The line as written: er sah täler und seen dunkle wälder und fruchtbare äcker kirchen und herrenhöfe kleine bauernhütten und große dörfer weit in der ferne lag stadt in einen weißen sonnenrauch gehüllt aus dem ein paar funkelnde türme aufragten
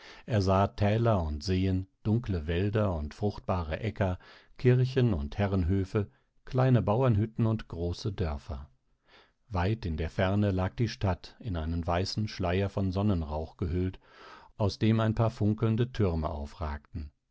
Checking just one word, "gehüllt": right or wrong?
right